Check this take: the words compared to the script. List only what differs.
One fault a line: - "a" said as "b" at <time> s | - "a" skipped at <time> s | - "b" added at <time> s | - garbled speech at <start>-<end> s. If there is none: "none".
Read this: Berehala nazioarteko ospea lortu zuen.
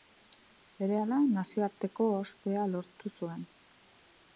none